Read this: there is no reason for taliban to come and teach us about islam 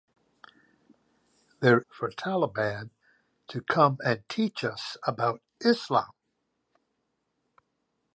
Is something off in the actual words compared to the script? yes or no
yes